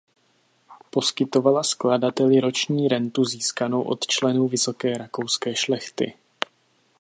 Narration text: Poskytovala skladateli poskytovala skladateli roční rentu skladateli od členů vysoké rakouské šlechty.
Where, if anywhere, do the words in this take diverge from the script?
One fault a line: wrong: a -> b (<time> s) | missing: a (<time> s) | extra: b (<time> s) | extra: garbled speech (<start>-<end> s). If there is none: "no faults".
missing: poskytovala skladateli (2.4 s)
wrong: skladateli -> získanou (3.2 s)